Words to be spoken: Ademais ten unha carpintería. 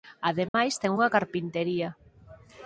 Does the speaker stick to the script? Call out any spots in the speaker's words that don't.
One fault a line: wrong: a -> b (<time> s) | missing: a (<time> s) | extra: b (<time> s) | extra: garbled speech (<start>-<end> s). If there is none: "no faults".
no faults